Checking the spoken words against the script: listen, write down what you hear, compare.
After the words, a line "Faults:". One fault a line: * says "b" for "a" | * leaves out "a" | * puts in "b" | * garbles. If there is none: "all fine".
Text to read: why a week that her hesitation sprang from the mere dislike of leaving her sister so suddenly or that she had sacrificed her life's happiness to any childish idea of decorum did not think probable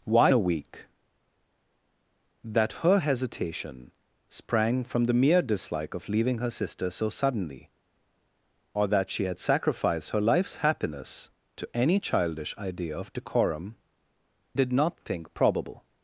why a week that her hesitation sprang from the mere dislike of leaving her sister so suddenly or that she had sacrificed her life's happiness to any childish idea of decorum did not think probable
Faults:
all fine